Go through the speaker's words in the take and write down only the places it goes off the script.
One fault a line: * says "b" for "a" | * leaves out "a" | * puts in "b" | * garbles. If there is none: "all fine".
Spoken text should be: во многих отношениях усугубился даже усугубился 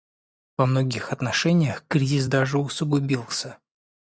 * says "кризис" for "усугубился"